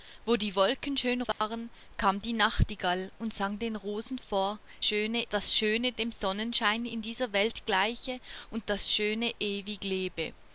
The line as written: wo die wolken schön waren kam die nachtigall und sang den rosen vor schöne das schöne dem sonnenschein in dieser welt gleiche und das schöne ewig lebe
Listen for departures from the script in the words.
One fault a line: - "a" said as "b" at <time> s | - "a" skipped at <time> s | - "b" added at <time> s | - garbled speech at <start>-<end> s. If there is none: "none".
none